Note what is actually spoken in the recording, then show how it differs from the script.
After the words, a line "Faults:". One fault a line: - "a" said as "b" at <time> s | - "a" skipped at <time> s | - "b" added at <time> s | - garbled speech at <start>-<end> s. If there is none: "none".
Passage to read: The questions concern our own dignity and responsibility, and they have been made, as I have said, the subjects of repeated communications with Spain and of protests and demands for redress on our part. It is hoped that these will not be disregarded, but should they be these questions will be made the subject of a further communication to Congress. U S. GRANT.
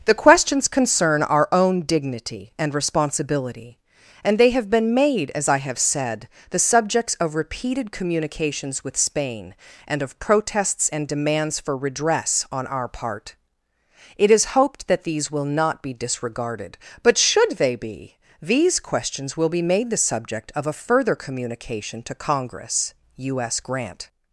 The questions concern our own dignity and responsibility, and they have been made, as I have said, the subjects of repeated communications with Spain and of protests and demands for redress on our part. It is hoped that these will not be disregarded, but should they be these questions will be made the subject of a further communication to Congress. U S. GRANT.
Faults:
none